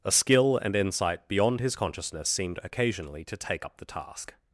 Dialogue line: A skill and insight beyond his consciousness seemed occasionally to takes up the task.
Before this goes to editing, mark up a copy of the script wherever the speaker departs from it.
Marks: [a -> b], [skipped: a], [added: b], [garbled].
A skill and insight beyond his consciousness seemed occasionally to [takes -> take] up the task.